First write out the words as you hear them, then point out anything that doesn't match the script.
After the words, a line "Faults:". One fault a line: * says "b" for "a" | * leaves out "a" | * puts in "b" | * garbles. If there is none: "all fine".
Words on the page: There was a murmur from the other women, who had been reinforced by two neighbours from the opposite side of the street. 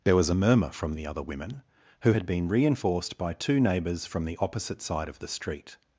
There was a murmur from the other women, who had been reinforced by two neighbours from the opposite side of the street.
Faults:
all fine